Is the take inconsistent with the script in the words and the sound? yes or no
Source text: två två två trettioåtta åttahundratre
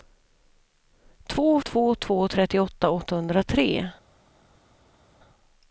no